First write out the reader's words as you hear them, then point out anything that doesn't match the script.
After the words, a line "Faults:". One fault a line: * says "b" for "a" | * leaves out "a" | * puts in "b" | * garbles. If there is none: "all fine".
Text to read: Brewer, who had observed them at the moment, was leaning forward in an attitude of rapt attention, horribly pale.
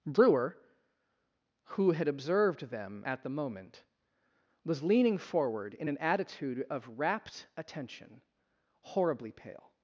Brewer, who had observed them at the moment, was leaning forward in an attitude of rapt attention, horribly pale.
Faults:
all fine